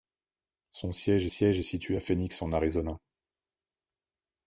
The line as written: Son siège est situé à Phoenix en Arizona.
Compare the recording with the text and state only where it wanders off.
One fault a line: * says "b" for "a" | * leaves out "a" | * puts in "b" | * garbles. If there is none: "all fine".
* puts in "siège"